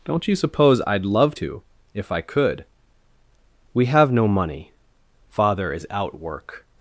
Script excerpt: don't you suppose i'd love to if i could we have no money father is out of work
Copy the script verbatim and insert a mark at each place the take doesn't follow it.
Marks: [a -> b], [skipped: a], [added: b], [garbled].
don't you suppose i'd love to if i could we have no money father is out [skipped: of] work